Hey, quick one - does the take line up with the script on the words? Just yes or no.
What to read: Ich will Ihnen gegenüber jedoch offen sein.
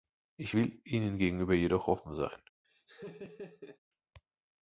yes